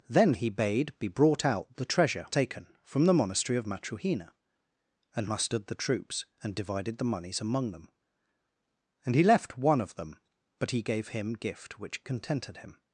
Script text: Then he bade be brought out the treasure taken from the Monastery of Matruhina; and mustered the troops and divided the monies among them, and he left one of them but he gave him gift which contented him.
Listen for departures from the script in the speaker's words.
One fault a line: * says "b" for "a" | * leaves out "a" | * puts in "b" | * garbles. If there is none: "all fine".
all fine